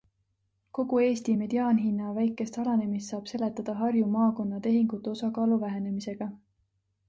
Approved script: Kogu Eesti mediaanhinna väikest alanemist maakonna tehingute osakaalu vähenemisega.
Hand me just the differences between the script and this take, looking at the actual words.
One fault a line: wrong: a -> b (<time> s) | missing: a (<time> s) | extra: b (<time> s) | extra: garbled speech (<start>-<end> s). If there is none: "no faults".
extra: saab seletada Harju (3.1 s)